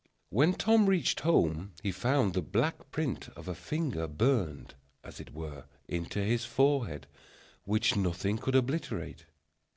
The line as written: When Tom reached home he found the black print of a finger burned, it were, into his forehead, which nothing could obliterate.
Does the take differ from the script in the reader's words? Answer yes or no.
yes